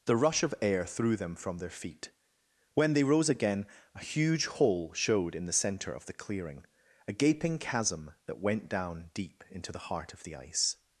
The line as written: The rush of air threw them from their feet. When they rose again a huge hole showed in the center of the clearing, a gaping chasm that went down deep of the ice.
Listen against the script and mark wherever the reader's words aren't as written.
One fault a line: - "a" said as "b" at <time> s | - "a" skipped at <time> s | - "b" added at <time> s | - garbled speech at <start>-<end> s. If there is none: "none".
- "into the heart" added at 9.5 s